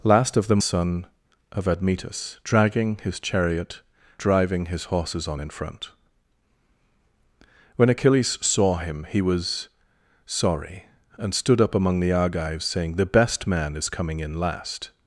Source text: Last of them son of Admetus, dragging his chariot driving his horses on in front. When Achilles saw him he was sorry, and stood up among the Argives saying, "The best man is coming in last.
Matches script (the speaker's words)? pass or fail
pass